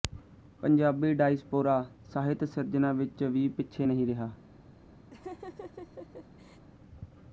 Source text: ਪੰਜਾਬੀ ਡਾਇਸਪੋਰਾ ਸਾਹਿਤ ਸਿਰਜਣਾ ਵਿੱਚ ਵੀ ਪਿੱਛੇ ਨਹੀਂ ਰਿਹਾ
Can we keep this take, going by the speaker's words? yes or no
yes